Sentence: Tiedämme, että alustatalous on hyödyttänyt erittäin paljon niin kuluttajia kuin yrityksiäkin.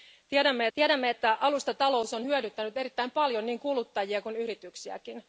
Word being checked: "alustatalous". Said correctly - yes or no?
yes